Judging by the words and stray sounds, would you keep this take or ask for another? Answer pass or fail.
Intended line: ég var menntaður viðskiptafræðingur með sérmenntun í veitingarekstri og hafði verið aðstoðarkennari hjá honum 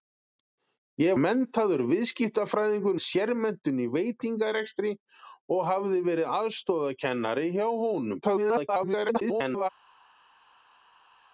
fail